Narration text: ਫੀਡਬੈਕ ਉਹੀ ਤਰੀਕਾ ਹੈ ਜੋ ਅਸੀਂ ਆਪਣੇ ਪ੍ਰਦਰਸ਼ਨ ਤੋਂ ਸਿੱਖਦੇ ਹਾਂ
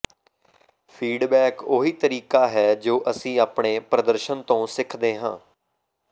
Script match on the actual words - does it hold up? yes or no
yes